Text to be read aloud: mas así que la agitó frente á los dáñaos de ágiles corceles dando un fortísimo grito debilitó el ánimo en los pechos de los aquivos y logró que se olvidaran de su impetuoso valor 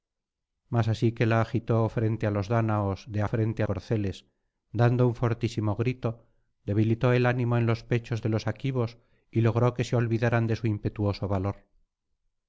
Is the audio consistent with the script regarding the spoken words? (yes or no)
no